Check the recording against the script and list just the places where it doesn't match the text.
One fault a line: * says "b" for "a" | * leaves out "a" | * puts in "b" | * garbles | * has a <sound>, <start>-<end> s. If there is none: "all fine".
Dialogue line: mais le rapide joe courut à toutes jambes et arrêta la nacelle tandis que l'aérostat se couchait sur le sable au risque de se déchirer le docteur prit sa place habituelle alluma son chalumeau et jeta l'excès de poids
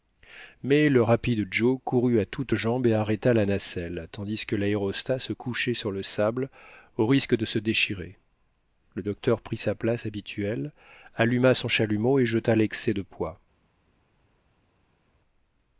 all fine